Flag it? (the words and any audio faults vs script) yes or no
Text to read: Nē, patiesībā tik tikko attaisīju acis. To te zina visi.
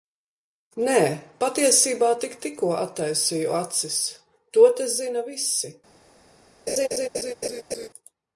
yes